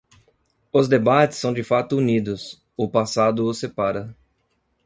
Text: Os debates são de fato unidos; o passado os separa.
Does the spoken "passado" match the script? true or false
true